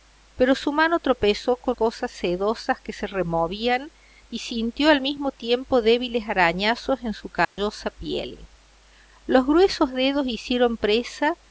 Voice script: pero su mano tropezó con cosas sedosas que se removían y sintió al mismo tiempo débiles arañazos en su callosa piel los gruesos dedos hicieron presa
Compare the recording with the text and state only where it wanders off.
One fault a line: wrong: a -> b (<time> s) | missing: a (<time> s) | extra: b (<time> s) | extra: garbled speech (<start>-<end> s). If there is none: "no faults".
no faults